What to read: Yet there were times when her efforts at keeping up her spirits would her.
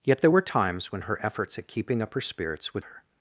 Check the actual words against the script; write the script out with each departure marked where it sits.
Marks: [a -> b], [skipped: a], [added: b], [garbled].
Yet there were times when her efforts at keeping up her spirits would her.